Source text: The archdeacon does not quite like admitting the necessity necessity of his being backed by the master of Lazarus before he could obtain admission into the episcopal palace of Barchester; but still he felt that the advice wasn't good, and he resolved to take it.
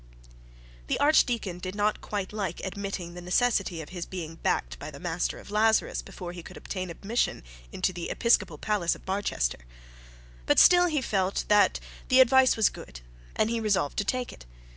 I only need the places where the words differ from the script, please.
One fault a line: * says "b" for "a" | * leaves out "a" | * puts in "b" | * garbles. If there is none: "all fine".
* says "did" for "does"
* leaves out "necessity"
* says "was" for "wasn't"